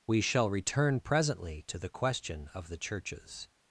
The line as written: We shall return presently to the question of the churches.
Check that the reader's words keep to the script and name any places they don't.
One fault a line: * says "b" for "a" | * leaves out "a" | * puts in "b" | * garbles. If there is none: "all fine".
all fine